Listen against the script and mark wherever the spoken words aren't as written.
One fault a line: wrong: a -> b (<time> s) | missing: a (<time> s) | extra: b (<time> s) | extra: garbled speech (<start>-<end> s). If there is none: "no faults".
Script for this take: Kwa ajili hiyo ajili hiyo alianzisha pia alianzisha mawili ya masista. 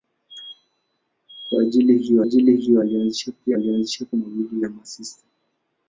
no faults